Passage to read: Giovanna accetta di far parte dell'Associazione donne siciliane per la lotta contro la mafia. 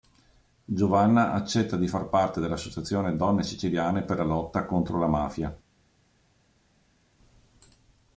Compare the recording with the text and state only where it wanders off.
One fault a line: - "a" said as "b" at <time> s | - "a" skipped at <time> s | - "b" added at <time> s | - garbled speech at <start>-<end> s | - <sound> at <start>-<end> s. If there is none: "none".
none